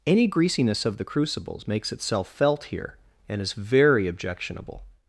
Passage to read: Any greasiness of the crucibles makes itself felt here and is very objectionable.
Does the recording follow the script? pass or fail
pass